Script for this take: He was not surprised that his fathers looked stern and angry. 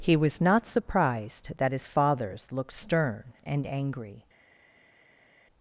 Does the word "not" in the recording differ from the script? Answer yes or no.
no